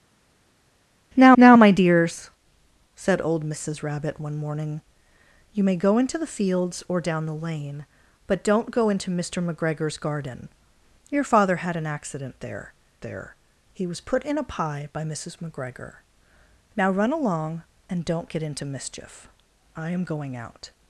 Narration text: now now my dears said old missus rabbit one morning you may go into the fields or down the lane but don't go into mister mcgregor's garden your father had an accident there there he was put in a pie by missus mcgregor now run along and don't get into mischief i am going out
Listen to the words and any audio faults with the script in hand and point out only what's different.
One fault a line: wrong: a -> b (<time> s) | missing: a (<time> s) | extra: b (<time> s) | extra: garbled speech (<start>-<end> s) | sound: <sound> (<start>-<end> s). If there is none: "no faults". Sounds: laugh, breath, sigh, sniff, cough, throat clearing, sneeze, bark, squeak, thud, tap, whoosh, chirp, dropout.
no faults